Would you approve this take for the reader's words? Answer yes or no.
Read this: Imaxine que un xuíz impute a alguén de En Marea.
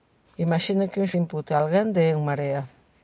no